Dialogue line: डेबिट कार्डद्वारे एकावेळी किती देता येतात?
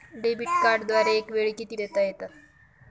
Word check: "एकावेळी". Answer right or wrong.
right